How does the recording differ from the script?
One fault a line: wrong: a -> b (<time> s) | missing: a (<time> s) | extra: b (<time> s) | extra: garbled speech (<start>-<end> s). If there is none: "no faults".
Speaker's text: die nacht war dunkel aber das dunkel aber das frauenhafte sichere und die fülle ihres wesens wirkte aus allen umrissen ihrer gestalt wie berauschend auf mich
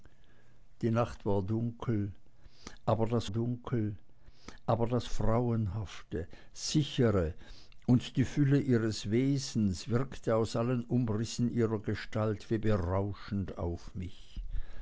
no faults